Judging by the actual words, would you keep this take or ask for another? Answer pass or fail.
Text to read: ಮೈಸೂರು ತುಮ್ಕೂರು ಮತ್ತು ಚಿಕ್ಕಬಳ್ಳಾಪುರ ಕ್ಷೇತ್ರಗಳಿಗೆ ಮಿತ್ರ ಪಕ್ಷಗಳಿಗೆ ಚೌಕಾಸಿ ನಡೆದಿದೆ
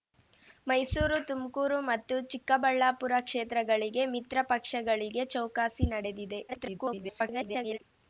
fail